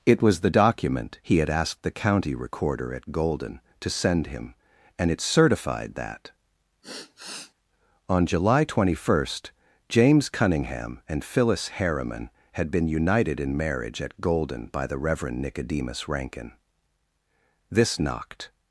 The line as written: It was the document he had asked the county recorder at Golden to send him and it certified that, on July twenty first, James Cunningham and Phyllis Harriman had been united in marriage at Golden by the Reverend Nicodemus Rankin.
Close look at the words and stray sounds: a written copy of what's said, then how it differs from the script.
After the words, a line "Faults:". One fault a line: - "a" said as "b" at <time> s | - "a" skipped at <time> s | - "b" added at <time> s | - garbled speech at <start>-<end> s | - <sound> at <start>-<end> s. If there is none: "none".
It was the document he had asked the county recorder at Golden to send him and it certified that, on July twenty first, James Cunningham and Phyllis Harriman had been united in marriage at Golden by the Reverend Nicodemus Rankin. This knocked
Faults:
- sigh at 6.8-7.5 s
- "This knocked" added at 17.7 s